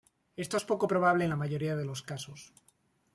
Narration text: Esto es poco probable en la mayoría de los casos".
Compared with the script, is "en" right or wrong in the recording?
right